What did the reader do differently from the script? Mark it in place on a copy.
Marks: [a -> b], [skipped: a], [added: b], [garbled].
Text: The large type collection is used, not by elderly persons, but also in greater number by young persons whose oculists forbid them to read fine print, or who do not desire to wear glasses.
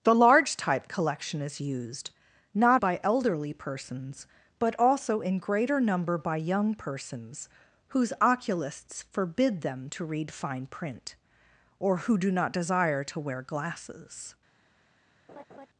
The large type collection is used, not by elderly persons, but also in greater number by young persons whose oculists forbid them to read fine print, or who do not desire to wear glasses.